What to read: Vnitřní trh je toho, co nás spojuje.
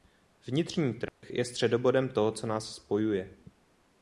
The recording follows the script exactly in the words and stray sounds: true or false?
false